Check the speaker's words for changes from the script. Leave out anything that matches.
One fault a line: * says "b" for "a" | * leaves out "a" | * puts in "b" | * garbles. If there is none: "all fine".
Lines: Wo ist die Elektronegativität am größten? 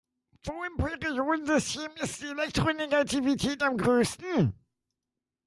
* puts in "im Periodensystem"